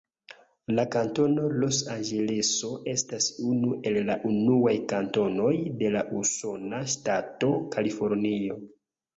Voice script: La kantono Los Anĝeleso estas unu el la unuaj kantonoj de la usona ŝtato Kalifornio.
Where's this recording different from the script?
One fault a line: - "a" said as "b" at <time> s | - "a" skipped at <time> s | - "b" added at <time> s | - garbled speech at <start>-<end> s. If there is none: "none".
none